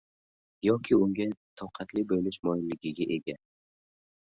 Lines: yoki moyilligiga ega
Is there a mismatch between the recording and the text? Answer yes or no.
yes